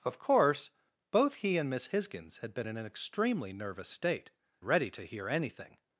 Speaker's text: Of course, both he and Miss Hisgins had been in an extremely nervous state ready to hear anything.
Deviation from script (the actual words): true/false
false